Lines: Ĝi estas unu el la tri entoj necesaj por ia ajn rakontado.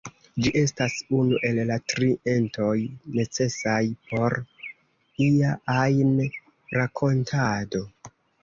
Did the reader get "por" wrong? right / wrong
right